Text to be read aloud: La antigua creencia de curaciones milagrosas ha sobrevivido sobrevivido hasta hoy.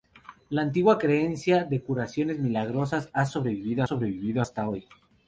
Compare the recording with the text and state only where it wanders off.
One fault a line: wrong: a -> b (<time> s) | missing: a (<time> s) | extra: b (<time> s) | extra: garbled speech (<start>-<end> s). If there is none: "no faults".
no faults